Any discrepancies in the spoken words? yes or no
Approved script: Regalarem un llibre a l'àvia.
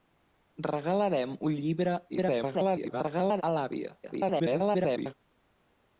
yes